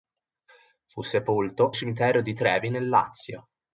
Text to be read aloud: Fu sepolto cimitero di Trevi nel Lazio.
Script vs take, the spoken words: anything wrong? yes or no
no